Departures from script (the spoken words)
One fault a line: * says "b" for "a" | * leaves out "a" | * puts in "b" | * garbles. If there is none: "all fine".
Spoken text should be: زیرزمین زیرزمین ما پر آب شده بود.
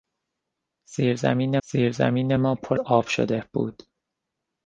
all fine